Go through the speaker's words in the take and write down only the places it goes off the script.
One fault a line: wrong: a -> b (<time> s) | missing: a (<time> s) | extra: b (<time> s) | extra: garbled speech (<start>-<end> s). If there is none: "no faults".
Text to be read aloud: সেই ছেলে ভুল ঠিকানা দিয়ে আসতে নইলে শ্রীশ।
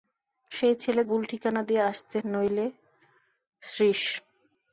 no faults